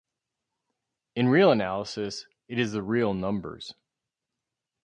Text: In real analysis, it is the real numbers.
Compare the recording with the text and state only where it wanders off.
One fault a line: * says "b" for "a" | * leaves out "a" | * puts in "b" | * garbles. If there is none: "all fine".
all fine